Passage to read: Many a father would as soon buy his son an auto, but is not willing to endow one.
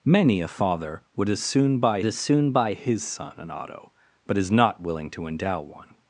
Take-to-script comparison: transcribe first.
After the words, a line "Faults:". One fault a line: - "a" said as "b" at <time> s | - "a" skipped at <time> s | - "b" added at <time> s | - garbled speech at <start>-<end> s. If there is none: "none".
Many a father would as soon buy as soon buy his son an auto, but is not willing to endow one.
Faults:
- "as soon buy" added at 2.0 s